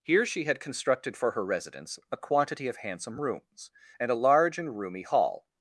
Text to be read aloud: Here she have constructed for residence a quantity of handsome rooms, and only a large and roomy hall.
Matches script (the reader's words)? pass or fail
fail